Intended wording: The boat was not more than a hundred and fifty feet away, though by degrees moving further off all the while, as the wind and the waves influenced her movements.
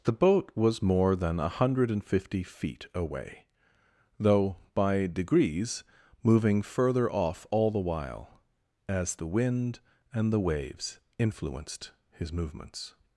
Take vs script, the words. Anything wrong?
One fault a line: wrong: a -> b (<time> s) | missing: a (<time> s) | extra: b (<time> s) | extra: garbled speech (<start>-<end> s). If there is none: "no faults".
missing: not (0.8 s)
wrong: her -> his (12.1 s)